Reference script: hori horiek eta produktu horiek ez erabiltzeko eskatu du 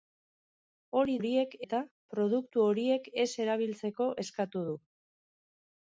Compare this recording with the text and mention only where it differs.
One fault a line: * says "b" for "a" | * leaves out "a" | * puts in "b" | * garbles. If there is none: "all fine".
all fine